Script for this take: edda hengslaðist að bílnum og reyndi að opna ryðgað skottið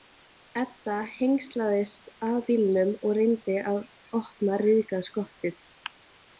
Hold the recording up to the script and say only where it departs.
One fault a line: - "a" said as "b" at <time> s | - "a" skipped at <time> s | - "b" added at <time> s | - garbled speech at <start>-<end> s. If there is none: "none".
none